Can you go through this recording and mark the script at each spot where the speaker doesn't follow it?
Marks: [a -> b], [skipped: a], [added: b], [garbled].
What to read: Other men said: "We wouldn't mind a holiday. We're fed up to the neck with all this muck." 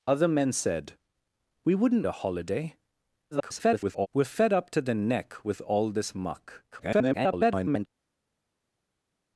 Other men said: "We wouldn't [skipped: mind] a holiday. [garbled] We're fed up to the neck with all this muck." [garbled]